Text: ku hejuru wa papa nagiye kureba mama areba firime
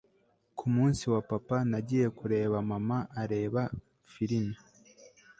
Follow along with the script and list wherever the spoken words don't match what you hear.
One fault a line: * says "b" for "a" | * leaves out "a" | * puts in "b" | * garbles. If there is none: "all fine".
* says "munsi" for "hejuru"